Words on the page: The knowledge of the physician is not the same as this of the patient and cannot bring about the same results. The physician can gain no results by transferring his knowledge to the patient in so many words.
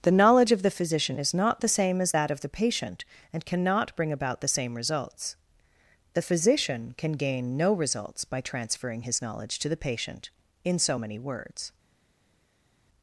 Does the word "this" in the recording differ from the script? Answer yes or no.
yes